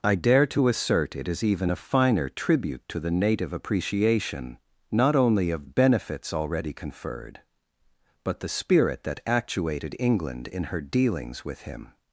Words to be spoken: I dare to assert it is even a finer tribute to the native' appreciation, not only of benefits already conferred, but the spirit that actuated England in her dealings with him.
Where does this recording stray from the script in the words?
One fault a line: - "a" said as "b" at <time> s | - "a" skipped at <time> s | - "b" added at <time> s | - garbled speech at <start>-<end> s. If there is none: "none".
none